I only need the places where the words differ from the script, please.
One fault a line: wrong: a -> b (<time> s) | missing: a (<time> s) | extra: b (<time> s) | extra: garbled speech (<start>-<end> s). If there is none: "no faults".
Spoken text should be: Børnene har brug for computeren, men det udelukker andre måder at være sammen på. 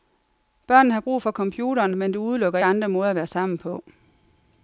no faults